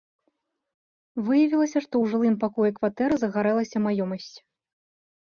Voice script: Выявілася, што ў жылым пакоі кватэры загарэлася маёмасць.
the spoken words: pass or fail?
pass